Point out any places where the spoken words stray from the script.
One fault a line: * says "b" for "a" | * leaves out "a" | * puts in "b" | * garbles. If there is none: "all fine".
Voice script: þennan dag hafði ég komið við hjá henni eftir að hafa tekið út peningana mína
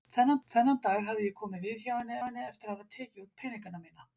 * puts in "þennan"
* puts in "henni"